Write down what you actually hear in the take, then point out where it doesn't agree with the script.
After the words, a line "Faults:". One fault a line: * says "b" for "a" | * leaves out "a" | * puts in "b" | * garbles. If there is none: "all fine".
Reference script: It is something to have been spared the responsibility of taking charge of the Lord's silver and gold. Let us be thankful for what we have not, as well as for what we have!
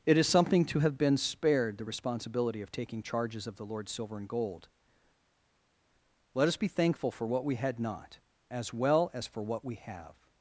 It is something to have been spared the responsibility of taking charges of the Lord's silver and gold. Let us be thankful for what we had not, as well as for what we have!
Faults:
* says "charges" for "charge"
* says "had" for "have"